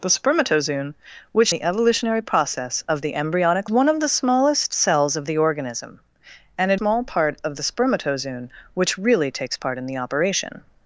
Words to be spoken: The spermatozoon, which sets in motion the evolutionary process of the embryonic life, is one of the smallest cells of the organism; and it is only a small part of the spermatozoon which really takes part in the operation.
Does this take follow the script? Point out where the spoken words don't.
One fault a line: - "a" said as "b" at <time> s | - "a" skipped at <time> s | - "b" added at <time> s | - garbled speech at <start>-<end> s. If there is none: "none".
- "sets in motion" skipped at 1.5 s
- "life is" skipped at 3.7 s
- "is only a" skipped at 6.8 s